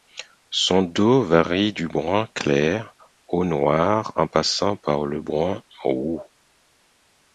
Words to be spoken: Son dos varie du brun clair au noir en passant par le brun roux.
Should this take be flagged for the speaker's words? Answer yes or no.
no